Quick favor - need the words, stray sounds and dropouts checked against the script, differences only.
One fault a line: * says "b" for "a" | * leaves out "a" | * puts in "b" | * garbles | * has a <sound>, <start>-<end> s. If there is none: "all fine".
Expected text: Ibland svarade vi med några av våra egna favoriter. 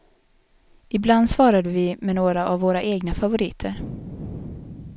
all fine